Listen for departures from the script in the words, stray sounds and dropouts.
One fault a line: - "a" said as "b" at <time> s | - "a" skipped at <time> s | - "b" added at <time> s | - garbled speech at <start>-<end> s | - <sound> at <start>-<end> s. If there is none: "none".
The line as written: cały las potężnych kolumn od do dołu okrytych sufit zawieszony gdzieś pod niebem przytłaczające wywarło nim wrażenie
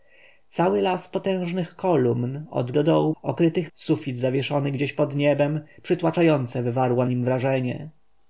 none